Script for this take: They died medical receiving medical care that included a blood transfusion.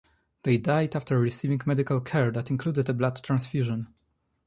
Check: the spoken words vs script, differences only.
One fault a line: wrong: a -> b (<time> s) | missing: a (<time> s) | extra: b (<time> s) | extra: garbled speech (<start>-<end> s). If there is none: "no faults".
wrong: medical -> after (1.0 s)